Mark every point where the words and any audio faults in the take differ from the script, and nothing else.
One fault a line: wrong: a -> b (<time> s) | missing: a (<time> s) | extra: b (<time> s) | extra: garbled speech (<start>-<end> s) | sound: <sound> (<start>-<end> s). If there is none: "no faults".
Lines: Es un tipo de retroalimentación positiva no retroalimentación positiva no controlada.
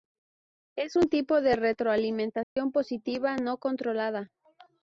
sound: dropout (2.4-2.6 s)
missing: retroalimentación positiva no (3.6 s)